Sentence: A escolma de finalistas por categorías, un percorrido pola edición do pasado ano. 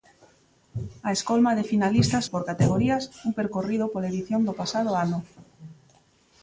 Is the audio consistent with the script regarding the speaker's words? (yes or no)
yes